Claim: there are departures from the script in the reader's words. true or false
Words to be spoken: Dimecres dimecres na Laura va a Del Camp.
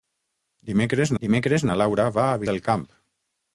false